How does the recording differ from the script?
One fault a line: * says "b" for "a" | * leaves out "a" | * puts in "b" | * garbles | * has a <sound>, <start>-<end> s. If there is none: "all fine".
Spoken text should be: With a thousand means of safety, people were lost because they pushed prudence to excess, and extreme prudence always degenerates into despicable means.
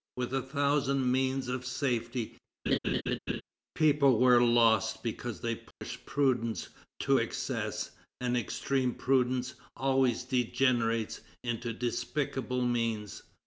* has a laugh, 2.7-3.4 s
* has a dropout, 5.7-5.8 s